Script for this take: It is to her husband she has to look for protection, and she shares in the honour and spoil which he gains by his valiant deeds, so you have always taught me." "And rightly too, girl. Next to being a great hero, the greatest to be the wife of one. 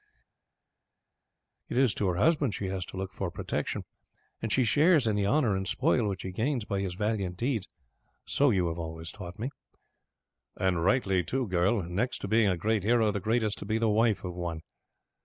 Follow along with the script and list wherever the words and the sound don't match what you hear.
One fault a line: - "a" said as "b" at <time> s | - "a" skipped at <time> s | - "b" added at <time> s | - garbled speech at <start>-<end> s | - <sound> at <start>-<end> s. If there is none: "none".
none